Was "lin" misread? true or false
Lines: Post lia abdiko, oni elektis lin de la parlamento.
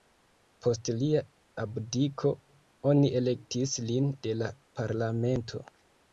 false